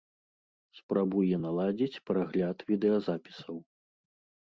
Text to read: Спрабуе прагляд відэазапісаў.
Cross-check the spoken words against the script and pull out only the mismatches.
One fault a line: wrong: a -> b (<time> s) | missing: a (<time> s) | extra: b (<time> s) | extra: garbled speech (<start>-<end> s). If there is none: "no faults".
extra: наладзіць (1.4 s)